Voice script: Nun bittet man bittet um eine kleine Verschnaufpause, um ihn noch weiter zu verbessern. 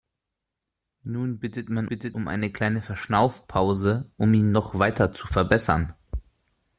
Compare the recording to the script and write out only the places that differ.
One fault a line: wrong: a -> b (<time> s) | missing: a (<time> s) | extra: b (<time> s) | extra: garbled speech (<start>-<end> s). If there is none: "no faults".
no faults